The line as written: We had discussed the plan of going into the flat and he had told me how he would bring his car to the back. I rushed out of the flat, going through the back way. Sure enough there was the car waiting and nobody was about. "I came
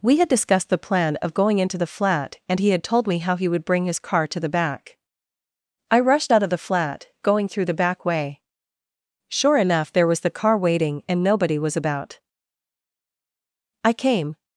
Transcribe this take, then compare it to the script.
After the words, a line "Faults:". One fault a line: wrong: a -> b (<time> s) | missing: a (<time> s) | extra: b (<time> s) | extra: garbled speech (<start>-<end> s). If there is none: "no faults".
We had discussed the plan of going into the flat and he had told me how he would bring his car to the back. I rushed out of the flat, going through the back way. Sure enough there was the car waiting and nobody was about. "I came
Faults:
no faults